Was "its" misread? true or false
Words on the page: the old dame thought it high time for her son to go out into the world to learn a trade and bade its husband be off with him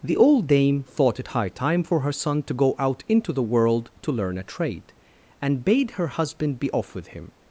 true